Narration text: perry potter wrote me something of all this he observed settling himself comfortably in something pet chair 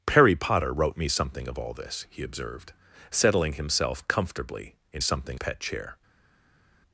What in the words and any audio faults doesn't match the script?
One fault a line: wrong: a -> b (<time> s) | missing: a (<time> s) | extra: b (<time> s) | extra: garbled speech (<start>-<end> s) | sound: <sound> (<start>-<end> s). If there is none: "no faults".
no faults